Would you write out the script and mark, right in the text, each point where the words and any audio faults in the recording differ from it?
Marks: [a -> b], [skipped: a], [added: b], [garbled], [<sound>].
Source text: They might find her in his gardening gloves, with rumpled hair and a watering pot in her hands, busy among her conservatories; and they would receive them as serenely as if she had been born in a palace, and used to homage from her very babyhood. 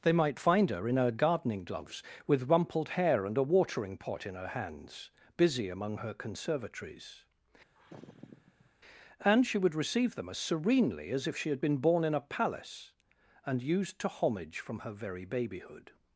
They might find her in [his -> her] gardening gloves, with rumpled hair and a watering pot in her hands, busy among her conservatories; [sigh] and [they -> she] would receive them as serenely as if she had been born in a palace, and used to homage from her very babyhood.